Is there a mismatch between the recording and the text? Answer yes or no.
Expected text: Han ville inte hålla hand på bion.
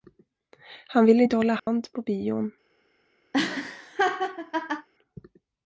no